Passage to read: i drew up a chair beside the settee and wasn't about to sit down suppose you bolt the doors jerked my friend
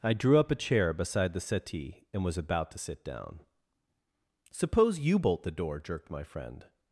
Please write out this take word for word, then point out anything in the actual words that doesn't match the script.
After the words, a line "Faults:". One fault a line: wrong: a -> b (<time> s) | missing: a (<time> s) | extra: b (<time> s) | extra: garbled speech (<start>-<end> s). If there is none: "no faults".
i drew up a chair beside the settee and was about to sit down suppose you bolt the door jerked my friend
Faults:
wrong: wasn't -> was (2.2 s)
wrong: doors -> door (5.5 s)